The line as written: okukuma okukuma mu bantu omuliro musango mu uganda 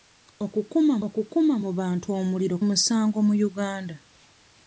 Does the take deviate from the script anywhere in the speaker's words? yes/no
no